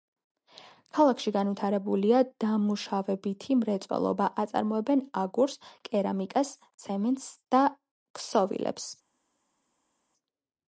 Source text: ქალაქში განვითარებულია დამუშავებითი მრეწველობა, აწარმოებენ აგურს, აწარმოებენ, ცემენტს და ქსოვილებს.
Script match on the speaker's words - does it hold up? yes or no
no